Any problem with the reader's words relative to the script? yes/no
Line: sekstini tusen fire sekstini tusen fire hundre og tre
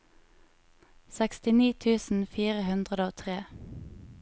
yes